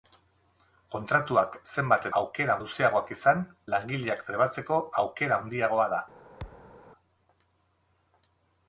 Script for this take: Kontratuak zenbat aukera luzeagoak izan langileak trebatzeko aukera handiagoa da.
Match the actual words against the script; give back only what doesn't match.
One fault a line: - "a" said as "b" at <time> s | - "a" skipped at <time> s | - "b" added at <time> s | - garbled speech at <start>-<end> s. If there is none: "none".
none